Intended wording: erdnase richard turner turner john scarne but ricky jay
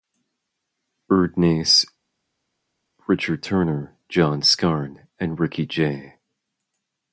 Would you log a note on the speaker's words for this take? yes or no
yes